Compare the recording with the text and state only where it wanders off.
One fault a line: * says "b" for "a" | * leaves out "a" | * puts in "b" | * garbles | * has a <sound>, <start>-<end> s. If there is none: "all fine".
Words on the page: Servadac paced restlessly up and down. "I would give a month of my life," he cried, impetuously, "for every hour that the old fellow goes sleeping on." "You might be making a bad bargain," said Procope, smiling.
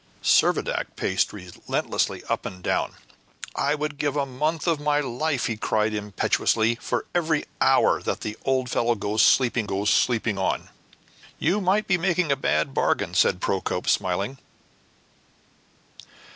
* puts in "goes sleeping"